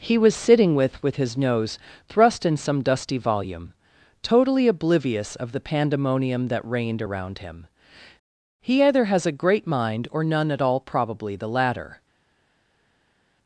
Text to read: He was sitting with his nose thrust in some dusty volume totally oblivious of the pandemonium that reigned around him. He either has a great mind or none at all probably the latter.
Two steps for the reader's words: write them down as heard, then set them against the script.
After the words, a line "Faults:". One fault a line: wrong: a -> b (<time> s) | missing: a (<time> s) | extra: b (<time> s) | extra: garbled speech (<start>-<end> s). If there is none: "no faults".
He was sitting with with his nose thrust in some dusty volume totally oblivious of the pandemonium that reigned around him. He either has a great mind or none at all probably the latter.
Faults:
extra: with (1.0 s)